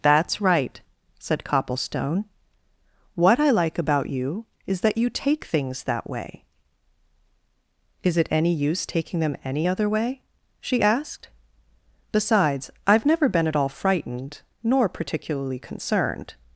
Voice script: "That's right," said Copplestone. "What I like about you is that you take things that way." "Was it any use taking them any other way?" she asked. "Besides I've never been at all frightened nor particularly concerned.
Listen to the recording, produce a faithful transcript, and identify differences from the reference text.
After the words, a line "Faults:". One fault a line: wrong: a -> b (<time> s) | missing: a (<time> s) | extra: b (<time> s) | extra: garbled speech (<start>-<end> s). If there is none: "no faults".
"That's right," said Copplestone. "What I like about you is that you take things that way." "Is it any use taking them any other way?" she asked. "Besides I've never been at all frightened nor particularly concerned.
Faults:
wrong: Was -> Is (8.0 s)